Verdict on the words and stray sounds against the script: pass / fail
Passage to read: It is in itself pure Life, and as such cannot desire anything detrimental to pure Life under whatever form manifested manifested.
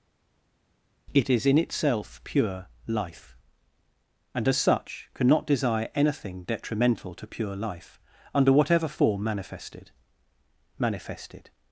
pass